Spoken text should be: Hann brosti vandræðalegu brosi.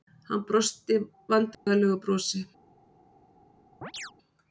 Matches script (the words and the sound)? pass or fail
fail